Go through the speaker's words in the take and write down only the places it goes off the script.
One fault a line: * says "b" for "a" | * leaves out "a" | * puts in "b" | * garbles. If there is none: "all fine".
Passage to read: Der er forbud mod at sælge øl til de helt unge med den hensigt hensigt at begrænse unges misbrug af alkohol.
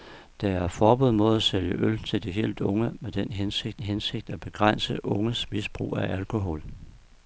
all fine